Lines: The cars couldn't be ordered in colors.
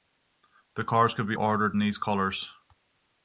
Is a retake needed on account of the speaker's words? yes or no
yes